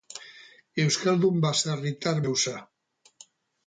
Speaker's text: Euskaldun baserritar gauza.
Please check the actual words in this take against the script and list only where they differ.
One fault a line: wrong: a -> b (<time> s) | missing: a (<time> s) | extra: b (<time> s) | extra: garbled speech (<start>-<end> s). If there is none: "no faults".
no faults